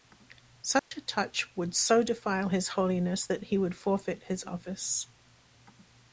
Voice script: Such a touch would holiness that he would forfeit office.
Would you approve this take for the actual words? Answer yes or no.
no